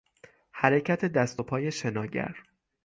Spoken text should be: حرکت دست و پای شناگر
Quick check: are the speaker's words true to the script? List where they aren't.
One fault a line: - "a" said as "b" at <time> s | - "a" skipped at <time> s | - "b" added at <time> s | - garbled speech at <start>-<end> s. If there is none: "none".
none